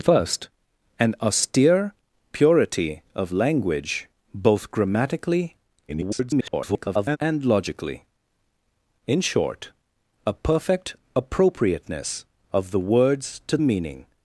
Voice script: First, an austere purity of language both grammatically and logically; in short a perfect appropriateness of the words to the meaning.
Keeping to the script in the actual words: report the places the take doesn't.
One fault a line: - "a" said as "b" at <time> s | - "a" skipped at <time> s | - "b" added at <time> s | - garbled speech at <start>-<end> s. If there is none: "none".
- garbled speech at 5.9-7.2 s
- "the" skipped at 13.6 s